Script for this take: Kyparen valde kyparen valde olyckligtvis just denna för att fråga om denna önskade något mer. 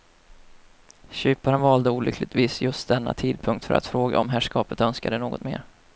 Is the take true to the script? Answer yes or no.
no